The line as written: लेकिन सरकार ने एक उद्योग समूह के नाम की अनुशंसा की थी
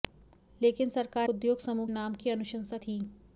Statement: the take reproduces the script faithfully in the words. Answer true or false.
false